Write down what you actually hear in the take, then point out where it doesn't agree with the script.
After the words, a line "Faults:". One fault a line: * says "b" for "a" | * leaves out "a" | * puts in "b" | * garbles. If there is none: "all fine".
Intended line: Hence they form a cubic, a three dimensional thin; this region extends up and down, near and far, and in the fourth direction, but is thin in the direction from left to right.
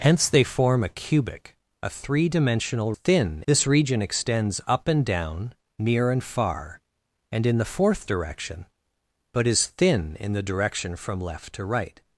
Hence they form a cubic, a three dimensional thin; this region extends up and down, near and far, and in the fourth direction, but is thin in the direction from left to right.
Faults:
all fine